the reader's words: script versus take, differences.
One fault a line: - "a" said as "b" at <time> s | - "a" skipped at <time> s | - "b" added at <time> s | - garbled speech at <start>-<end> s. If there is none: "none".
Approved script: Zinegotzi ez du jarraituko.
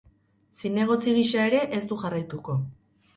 - "gisa ere" added at 1.2 s